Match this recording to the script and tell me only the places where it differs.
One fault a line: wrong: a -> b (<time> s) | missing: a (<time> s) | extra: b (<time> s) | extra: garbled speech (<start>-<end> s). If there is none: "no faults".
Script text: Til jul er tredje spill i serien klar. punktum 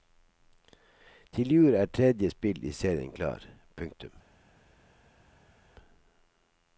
no faults